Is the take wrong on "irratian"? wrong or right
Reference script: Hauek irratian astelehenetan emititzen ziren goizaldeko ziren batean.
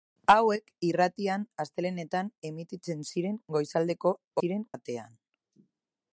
right